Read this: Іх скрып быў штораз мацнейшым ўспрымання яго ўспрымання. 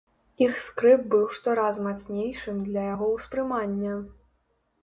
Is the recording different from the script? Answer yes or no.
yes